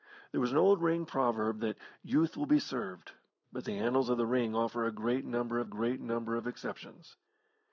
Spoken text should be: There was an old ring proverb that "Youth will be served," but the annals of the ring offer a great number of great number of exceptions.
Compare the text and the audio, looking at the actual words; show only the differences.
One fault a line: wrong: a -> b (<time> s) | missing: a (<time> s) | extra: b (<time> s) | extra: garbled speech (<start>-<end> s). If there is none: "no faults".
no faults